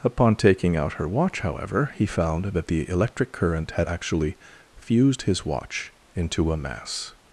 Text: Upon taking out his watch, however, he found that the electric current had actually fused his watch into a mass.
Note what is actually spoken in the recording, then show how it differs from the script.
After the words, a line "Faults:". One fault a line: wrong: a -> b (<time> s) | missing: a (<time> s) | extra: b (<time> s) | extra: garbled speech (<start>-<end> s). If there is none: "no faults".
Upon taking out her watch, however, he found that the electric current had actually fused his watch into a mass.
Faults:
wrong: his -> her (0.9 s)